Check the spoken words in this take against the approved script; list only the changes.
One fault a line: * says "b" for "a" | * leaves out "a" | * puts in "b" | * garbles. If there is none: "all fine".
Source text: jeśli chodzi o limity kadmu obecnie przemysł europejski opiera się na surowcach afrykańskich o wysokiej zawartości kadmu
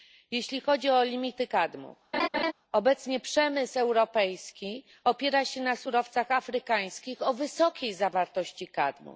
all fine